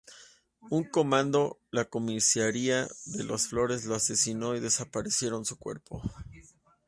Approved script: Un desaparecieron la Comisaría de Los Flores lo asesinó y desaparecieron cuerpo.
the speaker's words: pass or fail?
fail